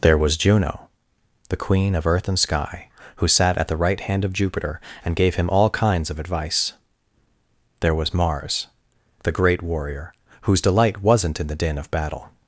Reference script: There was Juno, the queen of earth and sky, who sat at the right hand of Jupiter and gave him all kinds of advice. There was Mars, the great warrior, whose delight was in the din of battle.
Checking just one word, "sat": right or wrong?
right